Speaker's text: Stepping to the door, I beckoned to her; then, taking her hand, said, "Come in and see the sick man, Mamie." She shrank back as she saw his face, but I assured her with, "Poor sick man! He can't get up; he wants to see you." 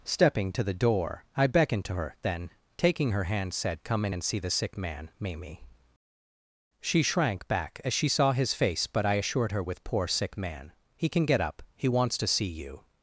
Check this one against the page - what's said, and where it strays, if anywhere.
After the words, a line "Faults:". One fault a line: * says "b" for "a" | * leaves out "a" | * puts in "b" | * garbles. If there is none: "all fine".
Stepping to the door, I beckoned to her; then, taking her hand, said, "Come in and see the sick man, Mamie." She shrank back as she saw his face, but I assured her with, "Poor sick man! He can get up; he wants to see you."
Faults:
* says "can" for "can't"